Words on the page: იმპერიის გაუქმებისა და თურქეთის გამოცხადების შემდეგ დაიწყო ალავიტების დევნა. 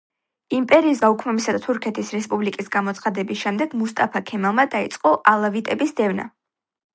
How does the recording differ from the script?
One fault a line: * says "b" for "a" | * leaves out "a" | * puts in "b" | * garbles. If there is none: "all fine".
* puts in "რესპუბლიკის"
* puts in "მუსტაფა ქემალმა"